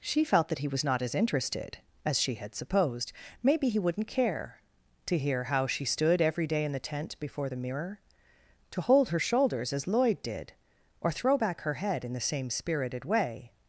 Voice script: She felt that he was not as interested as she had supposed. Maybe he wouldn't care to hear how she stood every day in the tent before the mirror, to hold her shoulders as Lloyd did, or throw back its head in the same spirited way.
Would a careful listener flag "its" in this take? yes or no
yes